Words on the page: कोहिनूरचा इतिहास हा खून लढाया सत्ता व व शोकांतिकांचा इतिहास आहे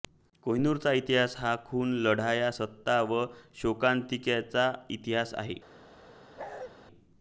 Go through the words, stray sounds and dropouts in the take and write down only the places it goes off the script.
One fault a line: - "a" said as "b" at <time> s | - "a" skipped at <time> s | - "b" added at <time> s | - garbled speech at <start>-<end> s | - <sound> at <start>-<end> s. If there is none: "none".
- "व" skipped at 3.2 s
- bark at 6.4-6.7 s